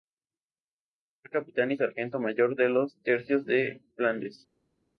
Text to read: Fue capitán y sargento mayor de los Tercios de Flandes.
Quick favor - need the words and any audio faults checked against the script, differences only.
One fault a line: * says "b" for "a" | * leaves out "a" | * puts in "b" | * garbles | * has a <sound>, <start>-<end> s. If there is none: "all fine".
all fine